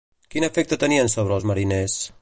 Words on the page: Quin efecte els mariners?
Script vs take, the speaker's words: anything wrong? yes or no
yes